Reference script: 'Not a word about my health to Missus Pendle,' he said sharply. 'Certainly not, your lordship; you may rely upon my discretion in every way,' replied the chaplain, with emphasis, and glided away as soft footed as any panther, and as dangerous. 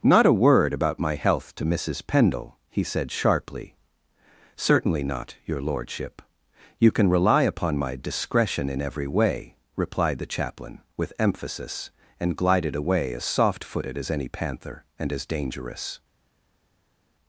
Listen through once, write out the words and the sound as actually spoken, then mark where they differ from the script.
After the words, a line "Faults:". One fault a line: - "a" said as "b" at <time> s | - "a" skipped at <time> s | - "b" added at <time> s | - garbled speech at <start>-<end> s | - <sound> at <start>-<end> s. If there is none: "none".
'Not a word about my health to Missus Pendle,' he said sharply. 'Certainly not, your lordship; you can rely upon my discretion in every way,' replied the chaplain, with emphasis, and glided away as soft footed as any panther, and as dangerous.
Faults:
- "may" said as "can" at 6.9 s